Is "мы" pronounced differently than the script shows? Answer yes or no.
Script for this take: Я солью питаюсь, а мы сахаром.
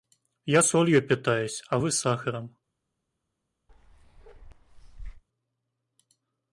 yes